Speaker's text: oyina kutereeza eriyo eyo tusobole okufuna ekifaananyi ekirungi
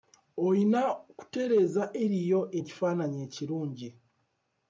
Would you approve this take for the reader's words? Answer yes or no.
no